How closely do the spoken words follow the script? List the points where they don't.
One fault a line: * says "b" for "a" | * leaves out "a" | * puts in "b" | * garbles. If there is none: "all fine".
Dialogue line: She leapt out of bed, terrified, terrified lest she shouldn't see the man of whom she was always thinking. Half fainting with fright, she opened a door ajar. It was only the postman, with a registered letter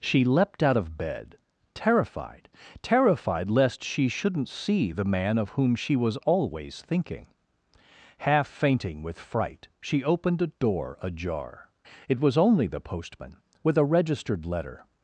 all fine